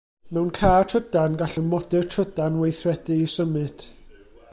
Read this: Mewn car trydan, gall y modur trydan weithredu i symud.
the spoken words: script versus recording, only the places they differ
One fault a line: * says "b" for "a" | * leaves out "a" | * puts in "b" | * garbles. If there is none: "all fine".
all fine